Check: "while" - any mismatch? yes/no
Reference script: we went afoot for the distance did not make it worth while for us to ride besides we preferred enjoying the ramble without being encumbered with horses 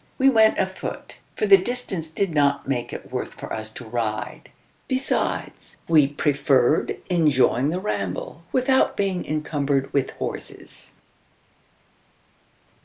yes